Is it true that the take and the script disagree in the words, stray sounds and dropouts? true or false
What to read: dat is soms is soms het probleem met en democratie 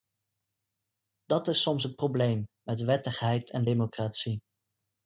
true